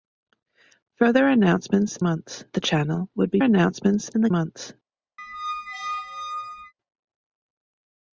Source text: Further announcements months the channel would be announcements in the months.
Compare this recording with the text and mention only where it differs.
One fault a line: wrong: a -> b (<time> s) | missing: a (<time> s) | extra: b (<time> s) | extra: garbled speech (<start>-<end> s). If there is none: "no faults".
no faults